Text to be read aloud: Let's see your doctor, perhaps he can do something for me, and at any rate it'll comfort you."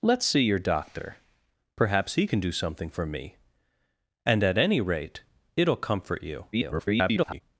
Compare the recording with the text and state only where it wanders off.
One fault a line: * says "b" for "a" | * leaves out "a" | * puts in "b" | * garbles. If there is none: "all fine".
* garbles